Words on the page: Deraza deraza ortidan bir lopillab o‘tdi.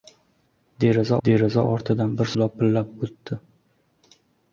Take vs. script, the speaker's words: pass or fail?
pass